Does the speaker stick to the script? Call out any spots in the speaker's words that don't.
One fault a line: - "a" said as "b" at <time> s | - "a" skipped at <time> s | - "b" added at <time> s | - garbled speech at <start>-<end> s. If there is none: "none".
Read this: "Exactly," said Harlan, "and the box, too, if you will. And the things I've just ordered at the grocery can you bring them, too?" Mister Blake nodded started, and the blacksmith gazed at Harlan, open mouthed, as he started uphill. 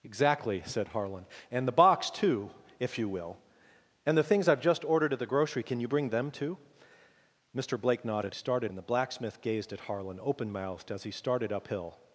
none